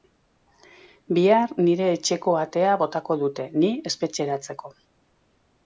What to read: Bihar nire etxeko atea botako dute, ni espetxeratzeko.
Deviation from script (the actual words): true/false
false